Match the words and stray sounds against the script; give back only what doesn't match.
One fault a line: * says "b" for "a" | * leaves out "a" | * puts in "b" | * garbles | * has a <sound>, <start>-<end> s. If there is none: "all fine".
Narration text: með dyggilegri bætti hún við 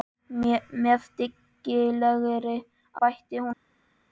all fine